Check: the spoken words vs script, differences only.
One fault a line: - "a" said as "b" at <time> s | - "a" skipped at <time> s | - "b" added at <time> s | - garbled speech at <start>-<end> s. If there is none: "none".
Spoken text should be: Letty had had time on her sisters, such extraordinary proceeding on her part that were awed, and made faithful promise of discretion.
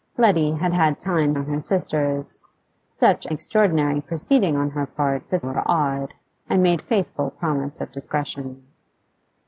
none